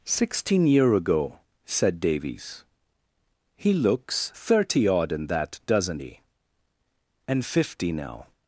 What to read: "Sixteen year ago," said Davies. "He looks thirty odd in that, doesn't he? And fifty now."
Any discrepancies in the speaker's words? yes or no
no